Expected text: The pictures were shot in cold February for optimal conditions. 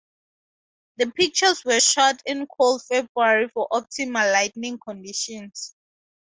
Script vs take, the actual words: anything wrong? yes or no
yes